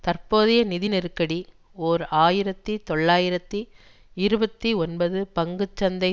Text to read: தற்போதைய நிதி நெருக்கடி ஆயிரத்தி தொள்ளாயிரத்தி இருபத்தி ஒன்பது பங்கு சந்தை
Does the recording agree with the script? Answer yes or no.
no